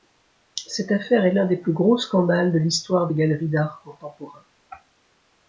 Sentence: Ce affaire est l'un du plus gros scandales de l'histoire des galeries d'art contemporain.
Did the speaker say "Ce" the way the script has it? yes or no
no